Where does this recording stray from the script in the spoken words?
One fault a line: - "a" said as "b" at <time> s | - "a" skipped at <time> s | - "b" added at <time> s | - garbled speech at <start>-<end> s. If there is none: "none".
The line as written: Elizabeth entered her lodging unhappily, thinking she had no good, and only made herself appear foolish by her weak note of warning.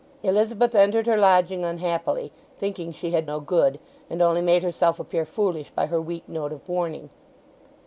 none